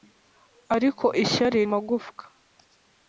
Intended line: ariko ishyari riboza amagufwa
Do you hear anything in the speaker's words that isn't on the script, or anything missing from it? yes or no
yes